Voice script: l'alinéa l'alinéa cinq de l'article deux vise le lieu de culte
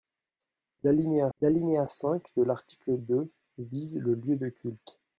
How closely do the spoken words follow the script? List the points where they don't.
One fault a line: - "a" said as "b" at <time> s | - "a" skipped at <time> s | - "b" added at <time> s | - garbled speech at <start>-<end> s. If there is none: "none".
none